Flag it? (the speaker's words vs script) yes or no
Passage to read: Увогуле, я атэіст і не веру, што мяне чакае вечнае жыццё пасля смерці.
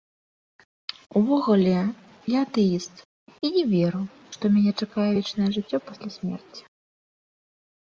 no